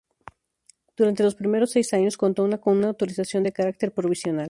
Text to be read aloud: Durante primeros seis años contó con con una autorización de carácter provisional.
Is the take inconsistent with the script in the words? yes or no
yes